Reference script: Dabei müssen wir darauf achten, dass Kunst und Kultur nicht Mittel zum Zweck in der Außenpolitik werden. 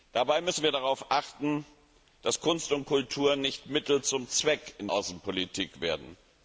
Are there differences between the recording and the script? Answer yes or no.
yes